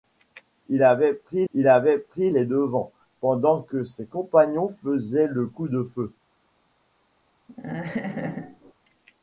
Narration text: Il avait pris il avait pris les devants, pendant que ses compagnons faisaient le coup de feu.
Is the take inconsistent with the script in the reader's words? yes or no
no